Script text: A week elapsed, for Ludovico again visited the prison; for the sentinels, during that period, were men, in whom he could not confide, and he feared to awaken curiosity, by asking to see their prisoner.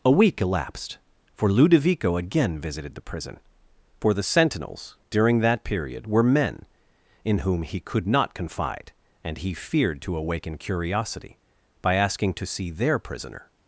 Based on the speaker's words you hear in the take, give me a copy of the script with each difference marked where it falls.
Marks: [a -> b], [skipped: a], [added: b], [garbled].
A week elapsed, for Ludovico again visited the prison; for the sentinels, during that period, were men, in whom he could not confide, and he feared to awaken curiosity, by asking to see their prisoner.